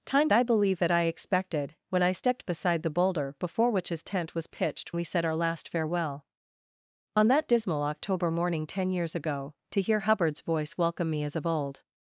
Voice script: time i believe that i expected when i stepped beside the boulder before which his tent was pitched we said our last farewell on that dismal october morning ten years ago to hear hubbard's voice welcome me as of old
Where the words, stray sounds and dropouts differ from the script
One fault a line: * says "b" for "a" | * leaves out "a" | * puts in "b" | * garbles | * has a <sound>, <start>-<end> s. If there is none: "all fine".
all fine